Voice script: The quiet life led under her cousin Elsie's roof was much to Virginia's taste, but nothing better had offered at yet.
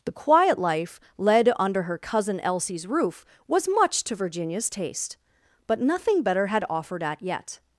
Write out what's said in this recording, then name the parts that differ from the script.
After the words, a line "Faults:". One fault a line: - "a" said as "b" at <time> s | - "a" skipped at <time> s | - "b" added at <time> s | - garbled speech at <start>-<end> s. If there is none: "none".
The quiet life led under her cousin Elsie's roof was much to Virginia's taste, but nothing better had offered at yet.
Faults:
none